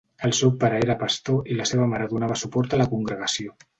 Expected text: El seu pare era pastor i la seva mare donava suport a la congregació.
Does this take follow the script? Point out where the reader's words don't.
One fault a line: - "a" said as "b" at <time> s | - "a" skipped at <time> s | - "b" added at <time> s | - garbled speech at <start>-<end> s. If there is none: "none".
none